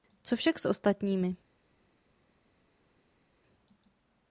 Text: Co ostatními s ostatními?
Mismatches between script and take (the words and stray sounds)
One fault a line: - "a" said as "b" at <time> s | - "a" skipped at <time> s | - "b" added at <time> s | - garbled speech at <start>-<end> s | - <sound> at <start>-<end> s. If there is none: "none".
- "ostatními" said as "však" at 0.3 s